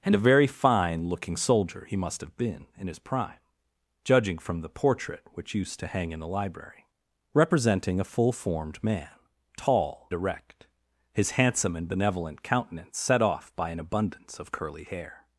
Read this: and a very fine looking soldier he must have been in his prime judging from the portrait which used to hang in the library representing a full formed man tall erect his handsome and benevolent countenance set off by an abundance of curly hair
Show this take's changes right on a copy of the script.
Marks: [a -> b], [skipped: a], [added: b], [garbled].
and a very fine looking soldier he must have been in his prime judging from the portrait which used to hang in the library representing a full formed man tall erect his handsome and benevolent countenance set off by an abundance of curly hair